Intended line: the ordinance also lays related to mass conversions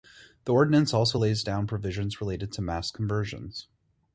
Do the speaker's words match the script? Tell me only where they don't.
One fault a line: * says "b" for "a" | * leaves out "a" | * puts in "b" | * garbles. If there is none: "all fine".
* puts in "down provisions"